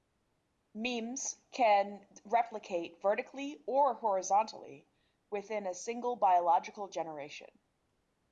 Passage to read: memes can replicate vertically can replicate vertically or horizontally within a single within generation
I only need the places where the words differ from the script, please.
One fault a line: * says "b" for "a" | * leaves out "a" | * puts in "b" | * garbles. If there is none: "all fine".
* leaves out "can replicate vertically"
* says "biological" for "within"